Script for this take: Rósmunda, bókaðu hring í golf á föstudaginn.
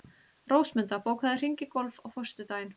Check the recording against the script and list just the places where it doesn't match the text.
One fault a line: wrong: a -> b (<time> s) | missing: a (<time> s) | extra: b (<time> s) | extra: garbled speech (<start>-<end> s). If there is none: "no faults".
no faults